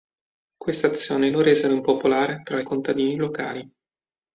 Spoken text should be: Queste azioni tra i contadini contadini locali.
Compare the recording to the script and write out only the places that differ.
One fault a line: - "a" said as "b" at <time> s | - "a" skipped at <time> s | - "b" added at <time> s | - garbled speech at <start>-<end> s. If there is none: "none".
- "lo resero impopolare" added at 1.3 s
- "contadini" skipped at 3.1 s